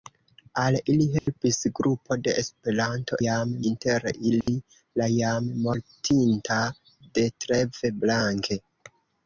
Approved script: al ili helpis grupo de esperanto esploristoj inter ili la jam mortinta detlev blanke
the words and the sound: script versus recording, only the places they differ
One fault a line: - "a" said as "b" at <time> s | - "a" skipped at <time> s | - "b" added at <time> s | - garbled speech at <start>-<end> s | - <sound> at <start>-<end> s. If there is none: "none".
- dropout at 1.2-1.3 s
- "esploristoj" said as "jam" at 3.2 s
- dropout at 4.4-4.5 s